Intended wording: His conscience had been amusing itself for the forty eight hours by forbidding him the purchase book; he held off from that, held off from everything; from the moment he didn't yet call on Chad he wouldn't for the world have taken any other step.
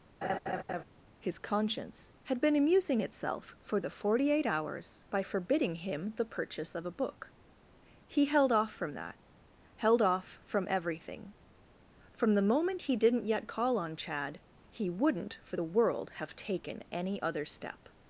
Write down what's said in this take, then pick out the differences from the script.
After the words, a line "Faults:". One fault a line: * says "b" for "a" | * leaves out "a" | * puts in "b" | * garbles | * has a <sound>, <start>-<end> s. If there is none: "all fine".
His conscience had been amusing itself for the forty eight hours by forbidding him the purchase of a book; he held off from that, held off from everything; from the moment he didn't yet call on Chad he wouldn't for the world have taken any other step.
Faults:
* has a laugh, 0.2-0.8 s
* puts in "of a"